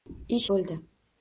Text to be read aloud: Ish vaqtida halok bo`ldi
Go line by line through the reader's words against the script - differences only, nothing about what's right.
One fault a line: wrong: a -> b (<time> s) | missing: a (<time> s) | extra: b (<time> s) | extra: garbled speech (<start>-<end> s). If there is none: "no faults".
missing: vaqtida halok (0.5 s)